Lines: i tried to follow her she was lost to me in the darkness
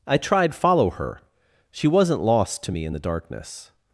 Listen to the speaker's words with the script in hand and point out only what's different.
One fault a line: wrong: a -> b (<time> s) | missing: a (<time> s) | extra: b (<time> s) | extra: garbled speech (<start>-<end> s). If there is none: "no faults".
missing: to (0.6 s)
wrong: was -> wasn't (1.9 s)